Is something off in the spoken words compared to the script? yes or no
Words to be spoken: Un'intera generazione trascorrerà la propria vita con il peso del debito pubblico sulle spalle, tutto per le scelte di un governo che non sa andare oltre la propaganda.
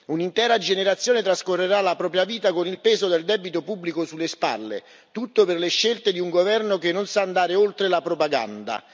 no